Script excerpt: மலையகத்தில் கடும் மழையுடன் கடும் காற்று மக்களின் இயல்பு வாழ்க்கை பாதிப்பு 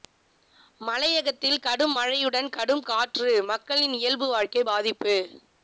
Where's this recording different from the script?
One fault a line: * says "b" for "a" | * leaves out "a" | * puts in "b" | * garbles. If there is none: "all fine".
all fine